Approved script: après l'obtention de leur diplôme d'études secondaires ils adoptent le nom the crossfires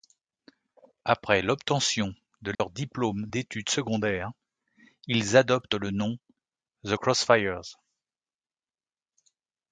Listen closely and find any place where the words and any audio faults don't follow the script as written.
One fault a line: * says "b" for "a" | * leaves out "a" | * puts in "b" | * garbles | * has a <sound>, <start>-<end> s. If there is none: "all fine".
* has a dropout, 2.5-2.6 s